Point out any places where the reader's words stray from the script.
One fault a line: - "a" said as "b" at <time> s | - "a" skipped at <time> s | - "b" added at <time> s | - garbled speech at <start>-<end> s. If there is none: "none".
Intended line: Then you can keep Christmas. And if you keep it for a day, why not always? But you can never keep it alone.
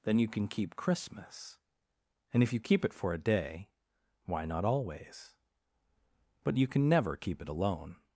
none